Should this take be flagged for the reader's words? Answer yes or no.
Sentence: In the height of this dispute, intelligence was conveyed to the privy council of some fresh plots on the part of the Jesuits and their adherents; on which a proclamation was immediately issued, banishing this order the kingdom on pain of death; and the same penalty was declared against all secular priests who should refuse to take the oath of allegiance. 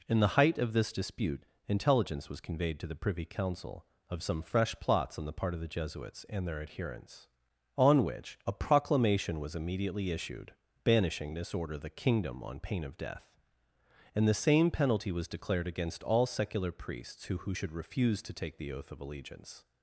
yes